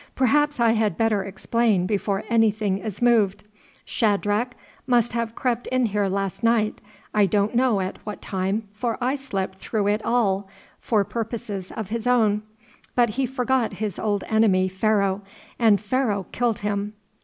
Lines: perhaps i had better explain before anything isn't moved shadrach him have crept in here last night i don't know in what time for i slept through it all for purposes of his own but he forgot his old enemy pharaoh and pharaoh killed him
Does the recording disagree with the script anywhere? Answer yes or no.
yes